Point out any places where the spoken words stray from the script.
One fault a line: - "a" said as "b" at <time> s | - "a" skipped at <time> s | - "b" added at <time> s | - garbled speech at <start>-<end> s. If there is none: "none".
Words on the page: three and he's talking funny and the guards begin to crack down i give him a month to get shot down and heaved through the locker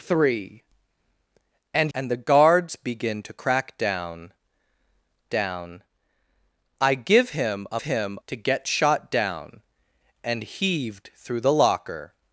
- "he's talking funny" skipped at 1.9 s
- "down" added at 5.3 s
- "month" said as "him" at 7.8 s